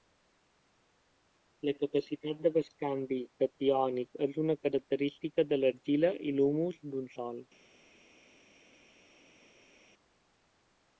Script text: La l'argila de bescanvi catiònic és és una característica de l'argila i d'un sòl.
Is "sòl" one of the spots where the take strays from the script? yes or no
no